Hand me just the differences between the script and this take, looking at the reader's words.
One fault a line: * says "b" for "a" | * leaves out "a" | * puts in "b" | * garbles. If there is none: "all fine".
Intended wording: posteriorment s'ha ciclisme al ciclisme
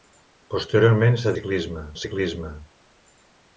all fine